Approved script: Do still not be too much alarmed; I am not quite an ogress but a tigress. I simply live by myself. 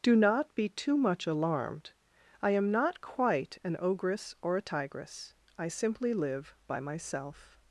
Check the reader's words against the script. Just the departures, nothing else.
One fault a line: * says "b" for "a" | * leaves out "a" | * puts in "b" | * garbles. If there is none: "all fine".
* leaves out "still"
* says "or" for "but"